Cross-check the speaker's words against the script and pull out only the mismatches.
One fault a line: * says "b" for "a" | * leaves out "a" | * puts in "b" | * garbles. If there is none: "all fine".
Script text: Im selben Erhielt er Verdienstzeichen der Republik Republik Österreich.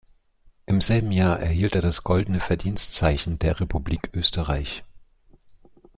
* puts in "Jahr"
* puts in "das Goldene"
* leaves out "Republik"